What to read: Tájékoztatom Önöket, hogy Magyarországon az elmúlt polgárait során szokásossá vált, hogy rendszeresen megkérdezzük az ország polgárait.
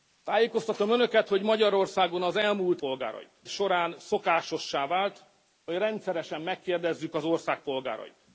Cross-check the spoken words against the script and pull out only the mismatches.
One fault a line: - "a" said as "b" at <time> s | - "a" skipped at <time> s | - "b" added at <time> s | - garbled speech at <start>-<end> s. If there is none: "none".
none